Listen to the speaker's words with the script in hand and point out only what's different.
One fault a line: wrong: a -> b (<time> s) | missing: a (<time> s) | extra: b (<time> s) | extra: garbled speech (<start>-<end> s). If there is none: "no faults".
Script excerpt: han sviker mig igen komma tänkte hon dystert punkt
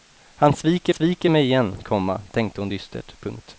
extra: sviker (0.9 s)